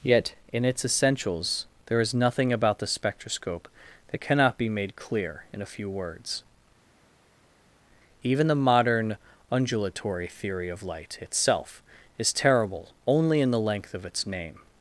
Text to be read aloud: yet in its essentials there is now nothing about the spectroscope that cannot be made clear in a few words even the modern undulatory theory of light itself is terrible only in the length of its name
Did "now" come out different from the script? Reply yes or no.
yes